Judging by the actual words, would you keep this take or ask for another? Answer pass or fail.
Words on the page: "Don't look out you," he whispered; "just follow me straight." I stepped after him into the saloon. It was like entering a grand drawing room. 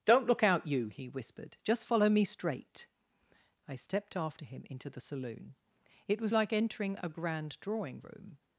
pass